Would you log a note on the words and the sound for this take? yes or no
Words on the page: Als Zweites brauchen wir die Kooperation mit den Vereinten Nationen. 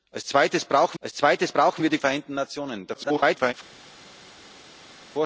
yes